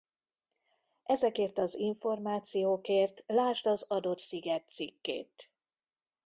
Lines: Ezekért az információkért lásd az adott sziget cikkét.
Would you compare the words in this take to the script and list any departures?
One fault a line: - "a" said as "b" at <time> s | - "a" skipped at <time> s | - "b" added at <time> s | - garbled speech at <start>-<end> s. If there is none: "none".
none